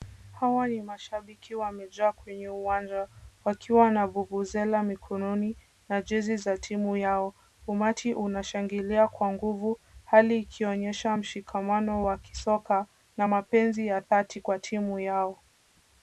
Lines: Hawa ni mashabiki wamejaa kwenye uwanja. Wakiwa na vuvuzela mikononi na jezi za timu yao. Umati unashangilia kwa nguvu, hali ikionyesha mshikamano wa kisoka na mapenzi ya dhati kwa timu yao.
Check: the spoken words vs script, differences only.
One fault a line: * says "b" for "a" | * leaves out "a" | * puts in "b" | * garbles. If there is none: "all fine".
all fine